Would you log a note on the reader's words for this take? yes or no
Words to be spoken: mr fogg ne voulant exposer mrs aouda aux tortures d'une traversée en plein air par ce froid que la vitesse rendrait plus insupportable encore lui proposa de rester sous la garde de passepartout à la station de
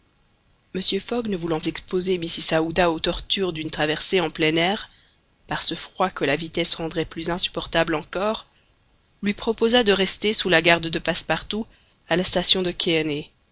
no